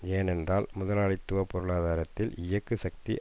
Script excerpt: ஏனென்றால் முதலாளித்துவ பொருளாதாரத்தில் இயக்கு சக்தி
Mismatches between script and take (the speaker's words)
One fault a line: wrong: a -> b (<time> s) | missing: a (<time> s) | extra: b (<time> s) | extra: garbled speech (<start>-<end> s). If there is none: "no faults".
no faults